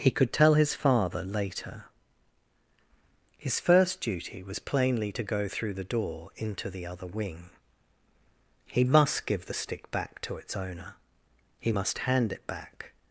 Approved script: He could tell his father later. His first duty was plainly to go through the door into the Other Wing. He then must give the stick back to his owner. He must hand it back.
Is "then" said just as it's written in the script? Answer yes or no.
no